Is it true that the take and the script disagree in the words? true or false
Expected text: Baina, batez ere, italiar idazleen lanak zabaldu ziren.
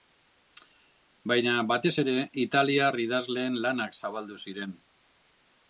false